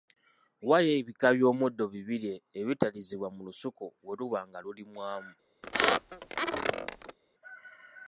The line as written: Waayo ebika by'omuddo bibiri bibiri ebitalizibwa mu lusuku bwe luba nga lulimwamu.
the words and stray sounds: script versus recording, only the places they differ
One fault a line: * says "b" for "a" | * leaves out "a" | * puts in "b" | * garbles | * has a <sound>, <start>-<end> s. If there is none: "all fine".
* leaves out "bibiri"
* has a squeak, 5.6-7.2 s